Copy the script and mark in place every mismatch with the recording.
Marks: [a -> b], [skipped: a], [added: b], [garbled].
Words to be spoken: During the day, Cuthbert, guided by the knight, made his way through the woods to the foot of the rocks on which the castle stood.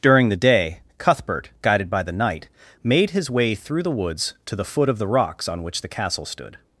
During the day, Cuthbert, guided by the knight, made his way through the woods to the foot of the rocks on which the castle stood.